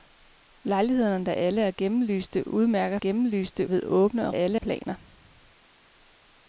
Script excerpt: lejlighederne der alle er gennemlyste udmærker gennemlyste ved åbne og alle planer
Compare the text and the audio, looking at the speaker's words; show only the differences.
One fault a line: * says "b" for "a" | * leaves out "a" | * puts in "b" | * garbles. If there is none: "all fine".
all fine